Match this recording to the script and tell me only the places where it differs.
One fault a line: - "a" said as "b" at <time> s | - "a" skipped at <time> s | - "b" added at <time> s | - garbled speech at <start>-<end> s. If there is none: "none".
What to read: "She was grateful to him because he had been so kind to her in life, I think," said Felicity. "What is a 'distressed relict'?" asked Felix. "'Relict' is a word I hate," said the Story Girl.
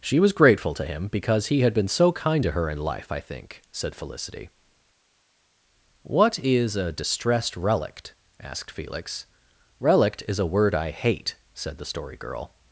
none